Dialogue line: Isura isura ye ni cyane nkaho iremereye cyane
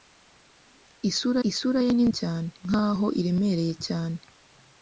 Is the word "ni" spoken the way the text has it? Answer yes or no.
yes